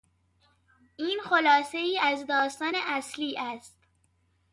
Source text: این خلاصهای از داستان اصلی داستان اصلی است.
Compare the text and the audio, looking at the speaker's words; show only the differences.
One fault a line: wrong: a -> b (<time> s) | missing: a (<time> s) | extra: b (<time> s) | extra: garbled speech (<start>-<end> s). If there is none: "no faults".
missing: داستان اصلی (3.4 s)